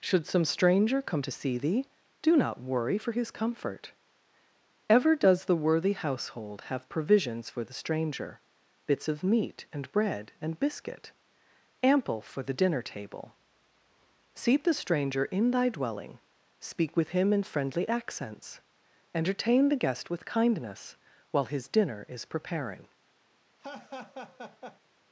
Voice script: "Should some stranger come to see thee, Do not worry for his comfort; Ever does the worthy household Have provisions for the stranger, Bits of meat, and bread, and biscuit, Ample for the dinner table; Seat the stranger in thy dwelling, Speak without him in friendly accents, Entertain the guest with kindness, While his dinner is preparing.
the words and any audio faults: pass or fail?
fail